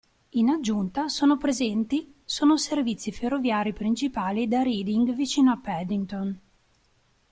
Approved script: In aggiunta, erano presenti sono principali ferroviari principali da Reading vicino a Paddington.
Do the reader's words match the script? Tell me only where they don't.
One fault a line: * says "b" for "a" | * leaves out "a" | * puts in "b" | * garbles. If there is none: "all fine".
* says "sono" for "erano"
* says "servizi" for "principali"